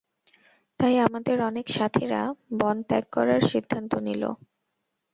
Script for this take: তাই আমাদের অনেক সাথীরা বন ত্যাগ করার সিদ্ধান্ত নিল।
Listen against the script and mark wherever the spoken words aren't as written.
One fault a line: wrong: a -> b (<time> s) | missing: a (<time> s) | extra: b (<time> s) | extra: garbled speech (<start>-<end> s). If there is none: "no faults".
no faults